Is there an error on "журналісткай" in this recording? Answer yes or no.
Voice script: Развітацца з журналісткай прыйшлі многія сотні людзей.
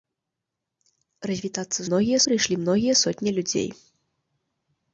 yes